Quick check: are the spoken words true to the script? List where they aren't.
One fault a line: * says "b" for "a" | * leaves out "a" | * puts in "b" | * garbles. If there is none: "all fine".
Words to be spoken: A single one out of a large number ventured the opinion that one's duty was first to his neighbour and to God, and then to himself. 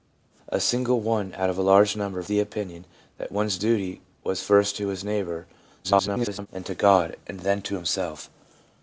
* leaves out "ventured"
* garbles